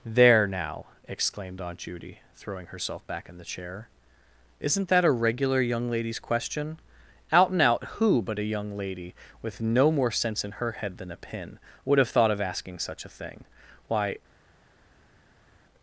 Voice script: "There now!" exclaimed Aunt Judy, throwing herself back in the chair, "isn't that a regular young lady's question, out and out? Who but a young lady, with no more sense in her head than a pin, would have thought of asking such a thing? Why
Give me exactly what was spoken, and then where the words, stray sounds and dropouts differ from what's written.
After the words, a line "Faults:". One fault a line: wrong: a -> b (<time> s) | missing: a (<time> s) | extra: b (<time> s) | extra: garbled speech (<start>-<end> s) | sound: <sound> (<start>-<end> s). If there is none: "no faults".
"There now!" exclaimed Aunt Judy, throwing herself back in the chair, "isn't that a regular young lady's question, out and out? Who but a young lady, with no more sense in her head than a pin, would have thought of asking such a thing? Why
Faults:
no faults